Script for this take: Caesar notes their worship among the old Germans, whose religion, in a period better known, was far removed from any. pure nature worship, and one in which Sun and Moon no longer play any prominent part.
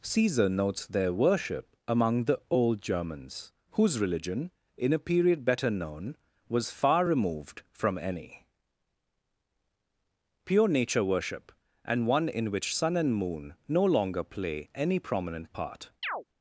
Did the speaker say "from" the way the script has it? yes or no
yes